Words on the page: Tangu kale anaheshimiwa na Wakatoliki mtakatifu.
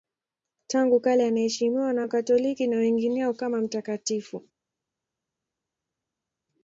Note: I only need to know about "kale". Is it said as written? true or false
true